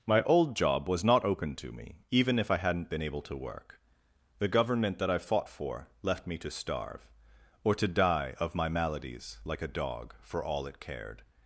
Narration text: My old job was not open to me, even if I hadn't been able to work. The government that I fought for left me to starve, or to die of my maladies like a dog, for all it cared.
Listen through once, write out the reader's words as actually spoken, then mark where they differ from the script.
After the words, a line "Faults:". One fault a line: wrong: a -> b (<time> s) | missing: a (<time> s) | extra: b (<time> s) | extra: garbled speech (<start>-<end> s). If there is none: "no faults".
My old job was not open to me, even if I hadn't been able to work. The government that I fought for left me to starve, or to die of my maladies like a dog, for all it cared.
Faults:
no faults